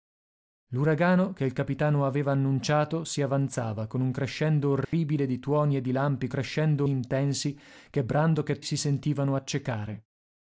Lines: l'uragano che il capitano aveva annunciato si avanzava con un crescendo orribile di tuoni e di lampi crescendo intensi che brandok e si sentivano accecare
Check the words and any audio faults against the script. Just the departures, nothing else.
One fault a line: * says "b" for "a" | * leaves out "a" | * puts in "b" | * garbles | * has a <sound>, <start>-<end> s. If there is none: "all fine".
* has a dropout, 4.8-4.9 s